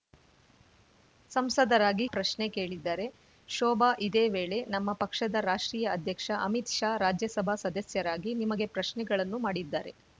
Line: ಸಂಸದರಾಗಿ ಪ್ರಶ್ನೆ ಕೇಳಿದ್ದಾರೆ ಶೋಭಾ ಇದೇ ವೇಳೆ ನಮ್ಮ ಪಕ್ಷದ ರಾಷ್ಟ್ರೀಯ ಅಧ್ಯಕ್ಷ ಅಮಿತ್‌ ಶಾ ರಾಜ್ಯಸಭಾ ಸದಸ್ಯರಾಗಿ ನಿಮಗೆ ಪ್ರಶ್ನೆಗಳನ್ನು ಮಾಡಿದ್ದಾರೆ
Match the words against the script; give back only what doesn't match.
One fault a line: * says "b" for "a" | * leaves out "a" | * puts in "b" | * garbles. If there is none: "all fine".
all fine